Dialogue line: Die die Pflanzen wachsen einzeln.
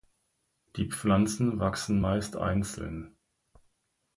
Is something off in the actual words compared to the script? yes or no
yes